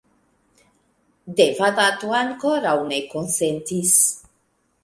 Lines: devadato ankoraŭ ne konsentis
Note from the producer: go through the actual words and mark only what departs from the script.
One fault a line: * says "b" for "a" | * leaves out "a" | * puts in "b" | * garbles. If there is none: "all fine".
all fine